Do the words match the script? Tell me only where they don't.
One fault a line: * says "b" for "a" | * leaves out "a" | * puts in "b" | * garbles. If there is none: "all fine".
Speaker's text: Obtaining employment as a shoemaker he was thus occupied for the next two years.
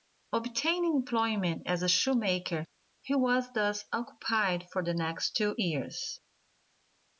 all fine